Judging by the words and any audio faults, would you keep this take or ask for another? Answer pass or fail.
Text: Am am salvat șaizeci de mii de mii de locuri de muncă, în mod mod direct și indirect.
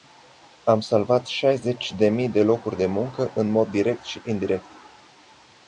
fail